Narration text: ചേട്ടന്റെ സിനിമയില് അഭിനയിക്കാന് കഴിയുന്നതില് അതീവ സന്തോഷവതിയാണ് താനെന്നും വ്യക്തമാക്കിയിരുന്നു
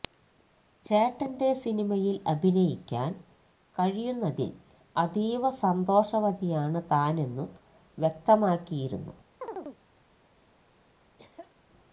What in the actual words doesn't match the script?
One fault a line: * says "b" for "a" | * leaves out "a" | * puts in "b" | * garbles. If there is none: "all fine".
all fine